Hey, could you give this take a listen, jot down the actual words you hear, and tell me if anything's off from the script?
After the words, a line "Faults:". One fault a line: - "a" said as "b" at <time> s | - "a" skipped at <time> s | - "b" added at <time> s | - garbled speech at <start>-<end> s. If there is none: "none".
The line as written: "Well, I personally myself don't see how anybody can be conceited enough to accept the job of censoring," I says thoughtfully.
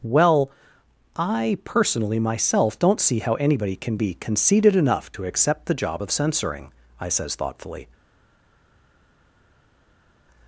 "Well, I personally myself don't see how anybody can be conceited enough to accept the job of censoring," I says thoughtfully.
Faults:
none